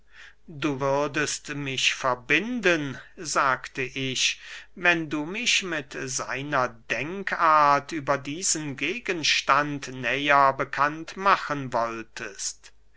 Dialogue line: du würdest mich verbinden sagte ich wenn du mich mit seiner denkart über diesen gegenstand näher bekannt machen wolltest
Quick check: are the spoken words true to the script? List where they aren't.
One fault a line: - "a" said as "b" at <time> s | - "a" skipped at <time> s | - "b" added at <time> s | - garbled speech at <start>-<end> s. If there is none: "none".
none